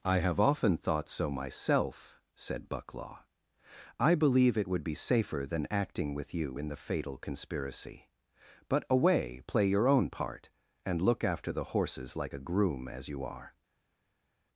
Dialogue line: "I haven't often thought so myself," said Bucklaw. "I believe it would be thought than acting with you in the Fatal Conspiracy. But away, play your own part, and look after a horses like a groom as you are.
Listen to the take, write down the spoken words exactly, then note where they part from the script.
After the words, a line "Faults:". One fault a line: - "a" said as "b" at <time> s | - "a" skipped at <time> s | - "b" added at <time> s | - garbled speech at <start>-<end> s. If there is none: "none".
"I have often thought so myself," said Bucklaw. "I believe it would be safer than acting with you in the Fatal Conspiracy. But away, play your own part, and look after the horses like a groom as you are.
Faults:
- "haven't" said as "have" at 0.2 s
- "thought" said as "safer" at 5.0 s
- "a" said as "the" at 11.5 s